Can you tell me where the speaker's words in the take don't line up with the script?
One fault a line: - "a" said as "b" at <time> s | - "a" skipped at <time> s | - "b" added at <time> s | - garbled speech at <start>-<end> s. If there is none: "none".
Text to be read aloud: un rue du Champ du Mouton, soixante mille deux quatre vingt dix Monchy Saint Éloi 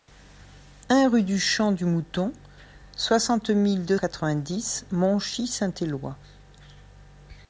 none